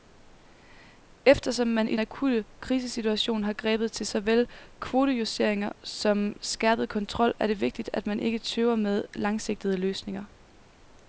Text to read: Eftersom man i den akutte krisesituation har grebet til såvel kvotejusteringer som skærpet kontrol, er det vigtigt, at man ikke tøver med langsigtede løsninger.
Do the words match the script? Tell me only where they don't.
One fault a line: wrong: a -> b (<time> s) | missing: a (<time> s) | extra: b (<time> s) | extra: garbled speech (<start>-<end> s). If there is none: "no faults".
missing: den (2.0 s)